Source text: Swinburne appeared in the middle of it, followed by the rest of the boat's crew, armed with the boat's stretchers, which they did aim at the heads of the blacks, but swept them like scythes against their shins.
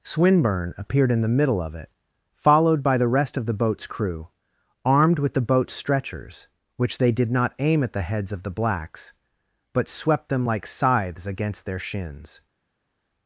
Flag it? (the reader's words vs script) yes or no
yes